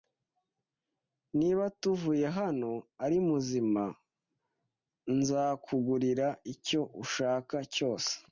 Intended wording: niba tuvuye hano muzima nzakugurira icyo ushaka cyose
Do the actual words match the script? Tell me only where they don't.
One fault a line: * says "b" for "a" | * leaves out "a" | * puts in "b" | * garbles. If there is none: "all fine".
* puts in "ari"